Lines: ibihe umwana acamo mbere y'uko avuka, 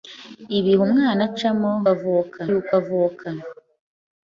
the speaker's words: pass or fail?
fail